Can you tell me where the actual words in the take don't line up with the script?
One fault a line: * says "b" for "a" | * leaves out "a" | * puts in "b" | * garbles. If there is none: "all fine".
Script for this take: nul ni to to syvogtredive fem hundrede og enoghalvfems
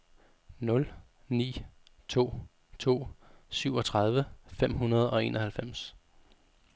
all fine